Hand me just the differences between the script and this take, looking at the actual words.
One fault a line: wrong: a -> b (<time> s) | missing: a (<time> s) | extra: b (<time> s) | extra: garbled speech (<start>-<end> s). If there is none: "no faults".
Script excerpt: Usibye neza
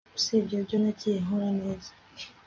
extra: ibyo nagiye nkora (0.6 s)